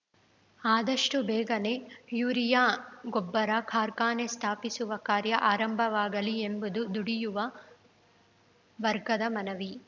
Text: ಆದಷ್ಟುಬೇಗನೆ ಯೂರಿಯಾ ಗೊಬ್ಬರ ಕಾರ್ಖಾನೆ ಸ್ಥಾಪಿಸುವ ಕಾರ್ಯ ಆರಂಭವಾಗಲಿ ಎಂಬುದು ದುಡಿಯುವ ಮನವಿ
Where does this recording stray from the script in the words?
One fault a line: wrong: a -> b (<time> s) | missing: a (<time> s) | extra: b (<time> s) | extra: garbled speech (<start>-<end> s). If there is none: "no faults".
extra: ವರ್ಗದ (8.8 s)